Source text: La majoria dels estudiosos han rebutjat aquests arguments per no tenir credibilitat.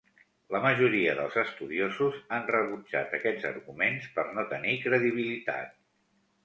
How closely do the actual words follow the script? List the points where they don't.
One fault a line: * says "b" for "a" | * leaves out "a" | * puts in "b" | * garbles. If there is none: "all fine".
all fine